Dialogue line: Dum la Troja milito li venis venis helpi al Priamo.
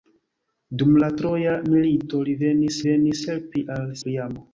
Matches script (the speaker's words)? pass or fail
pass